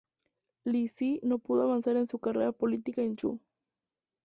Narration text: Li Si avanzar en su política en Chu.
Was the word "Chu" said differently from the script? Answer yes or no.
no